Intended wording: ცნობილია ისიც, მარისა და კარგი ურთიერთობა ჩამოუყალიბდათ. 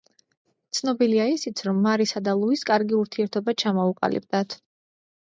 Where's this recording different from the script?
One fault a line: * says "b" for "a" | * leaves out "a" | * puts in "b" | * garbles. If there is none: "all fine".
* puts in "რომ"
* puts in "ლუის"